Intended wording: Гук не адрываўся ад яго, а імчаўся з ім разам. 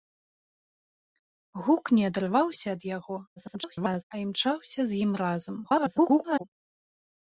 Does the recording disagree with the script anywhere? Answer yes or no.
yes